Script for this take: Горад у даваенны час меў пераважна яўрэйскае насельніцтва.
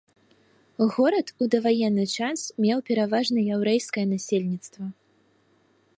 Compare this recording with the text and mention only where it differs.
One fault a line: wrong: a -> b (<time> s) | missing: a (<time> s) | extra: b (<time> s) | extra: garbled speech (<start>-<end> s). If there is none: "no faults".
no faults